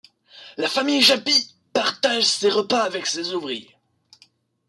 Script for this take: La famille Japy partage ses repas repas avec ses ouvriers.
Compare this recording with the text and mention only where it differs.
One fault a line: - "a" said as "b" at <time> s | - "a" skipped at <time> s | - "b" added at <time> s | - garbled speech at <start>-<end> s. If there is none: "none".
- "repas" skipped at 2.9 s